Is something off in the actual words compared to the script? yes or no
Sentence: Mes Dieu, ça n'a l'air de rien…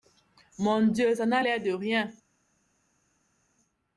yes